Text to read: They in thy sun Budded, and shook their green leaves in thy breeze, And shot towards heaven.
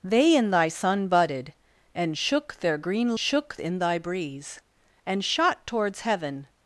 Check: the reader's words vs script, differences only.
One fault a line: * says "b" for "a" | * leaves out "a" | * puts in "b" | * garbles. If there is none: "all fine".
* says "shook" for "leaves"